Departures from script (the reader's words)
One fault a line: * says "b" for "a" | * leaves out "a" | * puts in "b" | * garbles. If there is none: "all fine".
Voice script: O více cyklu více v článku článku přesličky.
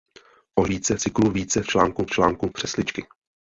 all fine